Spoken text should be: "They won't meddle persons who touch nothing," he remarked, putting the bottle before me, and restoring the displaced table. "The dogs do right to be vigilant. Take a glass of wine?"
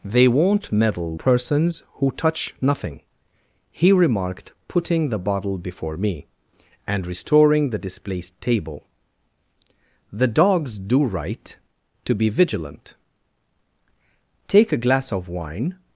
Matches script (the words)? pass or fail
pass